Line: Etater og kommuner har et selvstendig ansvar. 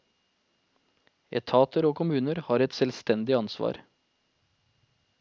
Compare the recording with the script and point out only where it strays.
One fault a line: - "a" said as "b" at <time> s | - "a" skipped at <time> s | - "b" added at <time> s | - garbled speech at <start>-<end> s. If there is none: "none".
none